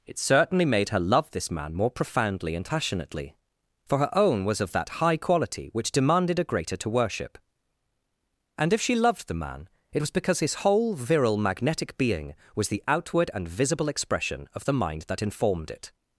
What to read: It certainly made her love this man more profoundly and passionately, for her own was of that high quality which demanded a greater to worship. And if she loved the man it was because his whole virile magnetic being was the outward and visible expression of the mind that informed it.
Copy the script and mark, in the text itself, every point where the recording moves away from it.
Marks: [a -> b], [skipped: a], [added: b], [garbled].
It certainly made her love this man more profoundly and passionately, for her own was of that high quality which demanded a greater to worship. And if she loved the man it was because his whole virile magnetic being was the outward and visible expression of the mind that informed it.